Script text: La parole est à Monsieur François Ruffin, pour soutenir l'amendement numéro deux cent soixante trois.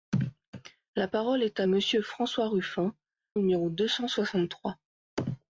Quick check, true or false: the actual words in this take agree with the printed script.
false